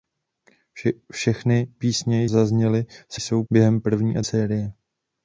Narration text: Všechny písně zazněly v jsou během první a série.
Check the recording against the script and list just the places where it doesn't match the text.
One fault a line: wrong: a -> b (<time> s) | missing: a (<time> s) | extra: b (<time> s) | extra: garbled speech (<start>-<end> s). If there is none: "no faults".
no faults